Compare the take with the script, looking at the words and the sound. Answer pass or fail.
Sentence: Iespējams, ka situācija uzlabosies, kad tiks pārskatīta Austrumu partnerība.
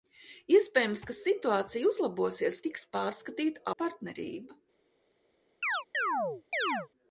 fail